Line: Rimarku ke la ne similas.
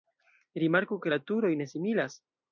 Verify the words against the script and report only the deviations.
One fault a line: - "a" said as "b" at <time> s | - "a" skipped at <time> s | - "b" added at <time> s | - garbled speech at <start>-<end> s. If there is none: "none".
- "turoj" added at 1.3 s